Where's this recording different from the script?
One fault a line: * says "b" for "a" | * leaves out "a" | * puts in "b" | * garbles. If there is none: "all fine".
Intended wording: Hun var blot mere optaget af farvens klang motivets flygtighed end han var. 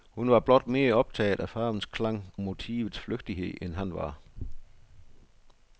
all fine